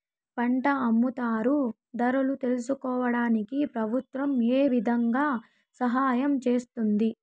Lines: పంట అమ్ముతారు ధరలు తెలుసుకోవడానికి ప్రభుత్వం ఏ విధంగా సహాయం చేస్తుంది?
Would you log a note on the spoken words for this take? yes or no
no